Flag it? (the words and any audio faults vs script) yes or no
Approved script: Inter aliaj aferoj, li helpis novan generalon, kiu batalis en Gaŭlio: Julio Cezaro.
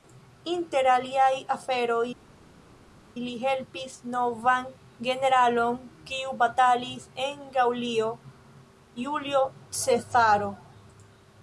no